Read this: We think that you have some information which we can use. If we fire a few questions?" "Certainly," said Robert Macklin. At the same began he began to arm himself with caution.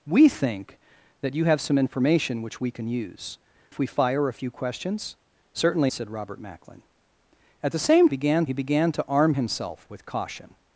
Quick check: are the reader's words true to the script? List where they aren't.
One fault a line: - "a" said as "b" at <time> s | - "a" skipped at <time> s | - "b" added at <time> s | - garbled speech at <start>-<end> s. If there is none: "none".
none